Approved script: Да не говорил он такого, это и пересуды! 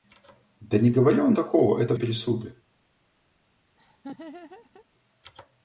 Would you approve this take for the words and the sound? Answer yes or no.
no